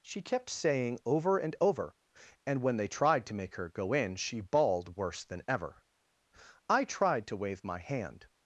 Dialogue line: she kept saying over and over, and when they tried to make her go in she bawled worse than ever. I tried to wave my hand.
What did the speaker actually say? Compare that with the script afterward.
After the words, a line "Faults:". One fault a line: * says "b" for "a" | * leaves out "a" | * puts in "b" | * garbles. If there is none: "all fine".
she kept saying over and over, and when they tried to make her go in she bawled worse than ever. I tried to wave my hand.
Faults:
all fine